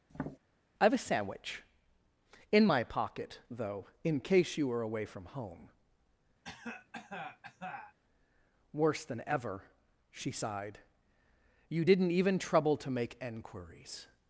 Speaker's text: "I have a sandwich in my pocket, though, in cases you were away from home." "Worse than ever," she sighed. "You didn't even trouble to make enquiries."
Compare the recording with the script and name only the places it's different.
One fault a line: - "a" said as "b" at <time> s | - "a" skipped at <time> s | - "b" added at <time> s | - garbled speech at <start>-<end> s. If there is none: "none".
- "cases" said as "case" at 4.2 s